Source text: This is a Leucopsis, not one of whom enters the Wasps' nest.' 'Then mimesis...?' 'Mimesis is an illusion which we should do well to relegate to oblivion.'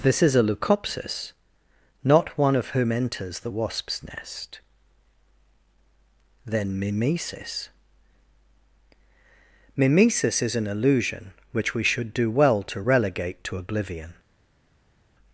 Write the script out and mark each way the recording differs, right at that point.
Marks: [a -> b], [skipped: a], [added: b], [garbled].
This is a Leucopsis, not one of whom enters the Wasps' nest.' 'Then mimesis...?' 'Mimesis is an illusion which we should do well to relegate to oblivion.'